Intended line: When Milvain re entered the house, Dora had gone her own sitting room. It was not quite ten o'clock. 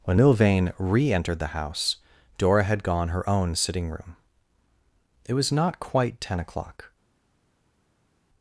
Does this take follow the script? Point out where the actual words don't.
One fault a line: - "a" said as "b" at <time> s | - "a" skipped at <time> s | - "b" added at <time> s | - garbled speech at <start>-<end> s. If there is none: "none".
none